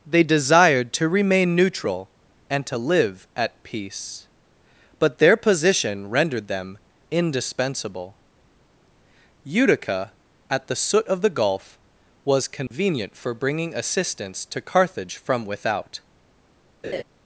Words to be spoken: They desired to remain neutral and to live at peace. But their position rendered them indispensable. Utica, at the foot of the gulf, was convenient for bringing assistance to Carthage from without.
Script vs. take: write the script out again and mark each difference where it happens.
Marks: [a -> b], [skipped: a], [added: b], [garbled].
They desired to remain neutral and to live at peace. But their position rendered them indispensable. Utica, at the [foot -> soot] of the gulf, was convenient for bringing assistance to Carthage from without.